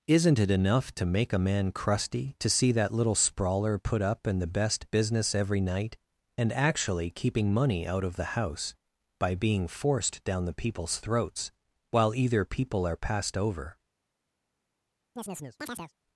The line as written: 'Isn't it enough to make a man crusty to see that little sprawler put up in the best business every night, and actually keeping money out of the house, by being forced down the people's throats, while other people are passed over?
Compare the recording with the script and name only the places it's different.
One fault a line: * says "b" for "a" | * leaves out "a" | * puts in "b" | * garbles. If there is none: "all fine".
* says "either" for "other"